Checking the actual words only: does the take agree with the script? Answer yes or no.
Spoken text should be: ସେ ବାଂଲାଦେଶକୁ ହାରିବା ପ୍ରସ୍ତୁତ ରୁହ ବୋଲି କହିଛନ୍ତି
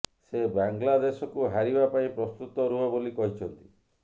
no